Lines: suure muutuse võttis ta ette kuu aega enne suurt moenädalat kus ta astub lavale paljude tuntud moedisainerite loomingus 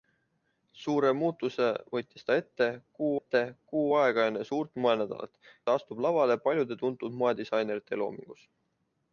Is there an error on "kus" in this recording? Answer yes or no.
yes